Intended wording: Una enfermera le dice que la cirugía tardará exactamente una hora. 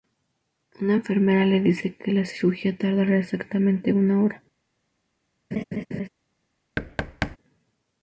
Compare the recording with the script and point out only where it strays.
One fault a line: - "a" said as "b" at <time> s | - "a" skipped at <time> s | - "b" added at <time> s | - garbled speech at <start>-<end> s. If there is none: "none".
none